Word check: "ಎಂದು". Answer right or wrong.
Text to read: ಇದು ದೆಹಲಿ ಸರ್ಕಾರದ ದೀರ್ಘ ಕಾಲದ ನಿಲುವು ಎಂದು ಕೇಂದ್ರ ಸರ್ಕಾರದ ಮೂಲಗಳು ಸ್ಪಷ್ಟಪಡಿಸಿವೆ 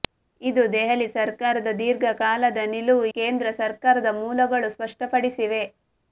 wrong